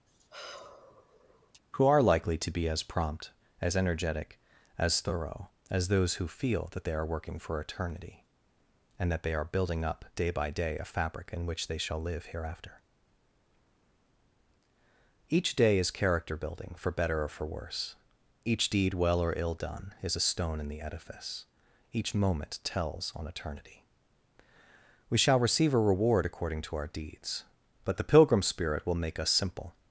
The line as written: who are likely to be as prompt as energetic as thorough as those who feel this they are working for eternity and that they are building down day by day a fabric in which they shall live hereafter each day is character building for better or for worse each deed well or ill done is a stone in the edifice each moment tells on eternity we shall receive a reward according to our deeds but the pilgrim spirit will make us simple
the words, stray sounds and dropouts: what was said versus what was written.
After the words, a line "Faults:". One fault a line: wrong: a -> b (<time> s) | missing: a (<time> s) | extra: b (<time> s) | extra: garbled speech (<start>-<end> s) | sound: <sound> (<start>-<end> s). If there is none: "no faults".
who are likely to be as prompt as energetic as thorough as those who feel that they are working for eternity and that they are building up day by day a fabric in which they shall live hereafter each day is character building for better or for worse each deed well or ill done is a stone in the edifice each moment tells on eternity we shall receive a reward according to our deeds but the pilgrim spirit will make us simple
Faults:
sound: sigh (0.1-1.6 s)
wrong: this -> that (6.7 s)
wrong: down -> up (9.8 s)